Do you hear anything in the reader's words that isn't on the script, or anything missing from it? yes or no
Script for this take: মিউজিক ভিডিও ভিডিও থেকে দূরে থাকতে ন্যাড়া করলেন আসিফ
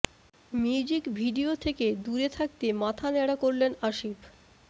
yes